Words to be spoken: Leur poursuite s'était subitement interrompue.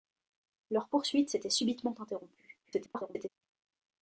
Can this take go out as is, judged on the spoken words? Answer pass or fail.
fail